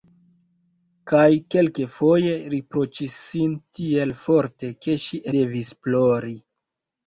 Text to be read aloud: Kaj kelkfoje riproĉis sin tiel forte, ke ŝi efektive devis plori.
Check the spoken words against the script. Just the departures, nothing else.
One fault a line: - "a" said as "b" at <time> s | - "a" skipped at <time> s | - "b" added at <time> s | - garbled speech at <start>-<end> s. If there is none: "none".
- "efektive" skipped at 5.2 s